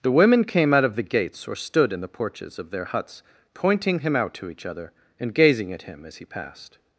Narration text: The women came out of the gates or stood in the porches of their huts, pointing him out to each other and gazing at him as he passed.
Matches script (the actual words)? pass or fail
pass